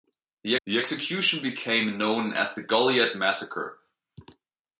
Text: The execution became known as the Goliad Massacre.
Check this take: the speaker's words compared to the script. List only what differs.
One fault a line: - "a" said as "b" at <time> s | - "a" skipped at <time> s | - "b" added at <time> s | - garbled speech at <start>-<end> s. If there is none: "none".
- "the" added at 0.7 s